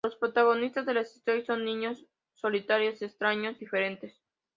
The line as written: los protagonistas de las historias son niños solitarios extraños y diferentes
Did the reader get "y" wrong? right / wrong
wrong